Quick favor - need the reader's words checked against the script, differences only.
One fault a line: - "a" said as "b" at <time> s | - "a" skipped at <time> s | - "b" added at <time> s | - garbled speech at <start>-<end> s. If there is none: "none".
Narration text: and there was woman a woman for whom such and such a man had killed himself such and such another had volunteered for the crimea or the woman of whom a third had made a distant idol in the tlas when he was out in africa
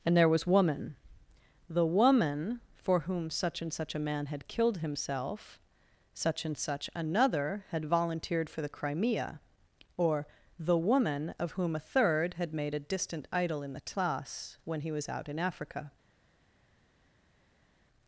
- "a" said as "the" at 1.7 s